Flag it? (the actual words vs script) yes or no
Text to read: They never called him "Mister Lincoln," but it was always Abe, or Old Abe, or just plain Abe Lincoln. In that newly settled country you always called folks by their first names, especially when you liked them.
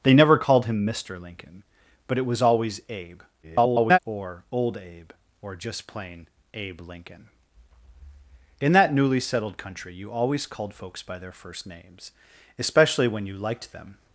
yes